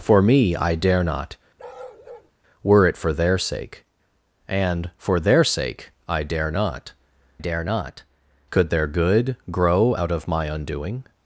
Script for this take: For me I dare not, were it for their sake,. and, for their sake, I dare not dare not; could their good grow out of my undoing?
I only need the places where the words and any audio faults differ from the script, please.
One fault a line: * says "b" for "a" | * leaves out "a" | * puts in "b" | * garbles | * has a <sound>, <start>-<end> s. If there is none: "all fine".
* has a bark, 1.6-2.3 s